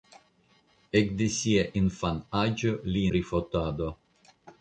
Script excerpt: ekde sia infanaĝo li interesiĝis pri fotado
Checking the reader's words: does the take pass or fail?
fail